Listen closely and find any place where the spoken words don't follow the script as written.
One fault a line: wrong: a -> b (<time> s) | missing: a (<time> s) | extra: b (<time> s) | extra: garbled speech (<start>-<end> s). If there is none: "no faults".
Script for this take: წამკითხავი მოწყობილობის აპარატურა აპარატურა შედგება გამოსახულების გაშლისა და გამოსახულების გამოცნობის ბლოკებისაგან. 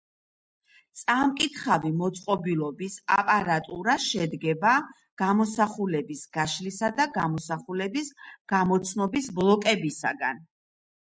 missing: აპარატურა (4.0 s)